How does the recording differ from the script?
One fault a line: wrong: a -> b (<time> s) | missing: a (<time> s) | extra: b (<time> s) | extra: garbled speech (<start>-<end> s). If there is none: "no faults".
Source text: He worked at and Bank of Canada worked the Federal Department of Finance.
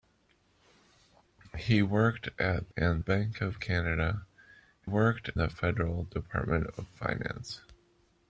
no faults